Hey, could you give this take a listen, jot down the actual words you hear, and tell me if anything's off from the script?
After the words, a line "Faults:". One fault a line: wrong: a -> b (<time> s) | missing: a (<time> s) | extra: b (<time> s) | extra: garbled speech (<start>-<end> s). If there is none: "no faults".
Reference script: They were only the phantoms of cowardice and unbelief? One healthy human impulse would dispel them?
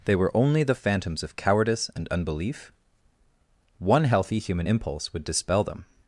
They were only the phantoms of cowardice and unbelief? One healthy human impulse would dispel them?
Faults:
no faults